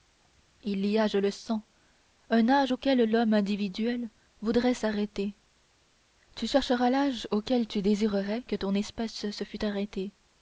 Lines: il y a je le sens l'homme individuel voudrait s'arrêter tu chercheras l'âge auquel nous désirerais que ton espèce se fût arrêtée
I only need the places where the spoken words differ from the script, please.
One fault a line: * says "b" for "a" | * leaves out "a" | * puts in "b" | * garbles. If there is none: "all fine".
* puts in "un âge auquel"
* says "tu" for "nous"